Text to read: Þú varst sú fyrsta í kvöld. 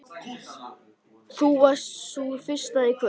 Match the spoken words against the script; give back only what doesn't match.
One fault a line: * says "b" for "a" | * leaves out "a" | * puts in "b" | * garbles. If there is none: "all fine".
all fine